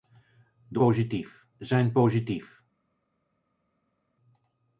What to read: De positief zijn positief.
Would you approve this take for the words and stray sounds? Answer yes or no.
yes